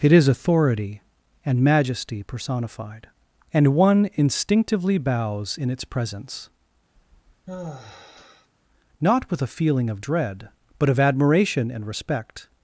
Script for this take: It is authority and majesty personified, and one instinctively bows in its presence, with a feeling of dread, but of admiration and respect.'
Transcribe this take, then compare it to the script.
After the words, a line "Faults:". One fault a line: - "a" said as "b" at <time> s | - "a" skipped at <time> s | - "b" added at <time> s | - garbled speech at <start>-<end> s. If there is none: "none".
It is authority and majesty personified, and one instinctively bows in its presence, not with a feeling of dread, but of admiration and respect.'
Faults:
- "not" added at 9.0 s